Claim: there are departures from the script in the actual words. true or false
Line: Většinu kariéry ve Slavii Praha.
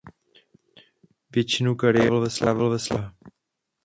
true